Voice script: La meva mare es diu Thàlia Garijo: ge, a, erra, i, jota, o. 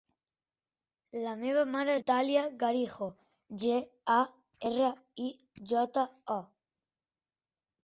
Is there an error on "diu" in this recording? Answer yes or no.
yes